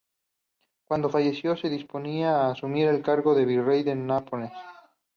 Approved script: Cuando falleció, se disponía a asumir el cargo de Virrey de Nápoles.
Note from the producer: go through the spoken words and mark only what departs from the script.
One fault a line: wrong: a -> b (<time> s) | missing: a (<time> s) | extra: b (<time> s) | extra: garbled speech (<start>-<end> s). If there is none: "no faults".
no faults